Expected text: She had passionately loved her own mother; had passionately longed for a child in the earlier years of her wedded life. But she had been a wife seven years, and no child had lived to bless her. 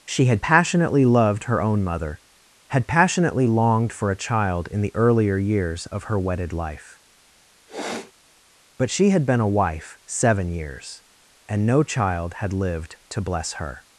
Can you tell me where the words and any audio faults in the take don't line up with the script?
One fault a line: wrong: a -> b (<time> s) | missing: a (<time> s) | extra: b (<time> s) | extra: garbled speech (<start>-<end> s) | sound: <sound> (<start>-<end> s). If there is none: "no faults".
sound: sniff (7.7-8.1 s)